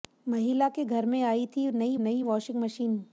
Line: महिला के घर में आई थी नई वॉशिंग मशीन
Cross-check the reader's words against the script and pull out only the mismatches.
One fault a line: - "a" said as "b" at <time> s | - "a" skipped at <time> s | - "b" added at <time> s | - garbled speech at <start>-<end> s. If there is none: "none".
- "नई" added at 2.0 s